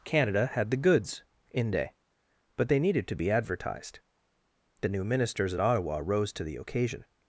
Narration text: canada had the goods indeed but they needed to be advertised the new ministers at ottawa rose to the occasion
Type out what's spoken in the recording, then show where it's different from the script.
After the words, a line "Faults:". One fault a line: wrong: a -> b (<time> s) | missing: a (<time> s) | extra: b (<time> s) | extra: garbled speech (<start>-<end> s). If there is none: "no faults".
canada had the goods inde but they needed to be advertised the new ministers at ottawa rose to the occasion
Faults:
wrong: indeed -> inde (1.5 s)